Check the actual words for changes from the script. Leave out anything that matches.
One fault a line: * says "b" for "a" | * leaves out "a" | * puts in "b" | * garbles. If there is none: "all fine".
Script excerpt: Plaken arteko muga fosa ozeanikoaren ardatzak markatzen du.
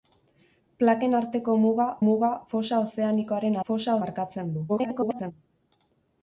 * puts in "muga"
* says "fosa" for "ardatzak"
* garbles